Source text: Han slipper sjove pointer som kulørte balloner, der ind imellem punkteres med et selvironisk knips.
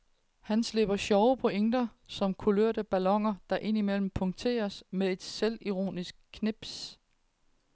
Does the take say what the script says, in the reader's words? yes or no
yes